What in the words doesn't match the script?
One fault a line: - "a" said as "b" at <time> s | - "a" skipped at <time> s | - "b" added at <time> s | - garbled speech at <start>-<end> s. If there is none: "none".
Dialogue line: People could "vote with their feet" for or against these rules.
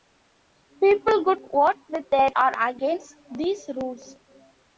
- "feet for" skipped at 2.3 s